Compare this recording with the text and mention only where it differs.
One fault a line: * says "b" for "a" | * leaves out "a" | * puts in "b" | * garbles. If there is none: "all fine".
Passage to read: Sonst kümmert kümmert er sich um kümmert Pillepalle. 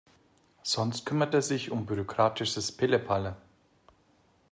* leaves out "kümmert"
* says "bürokratisches" for "kümmert"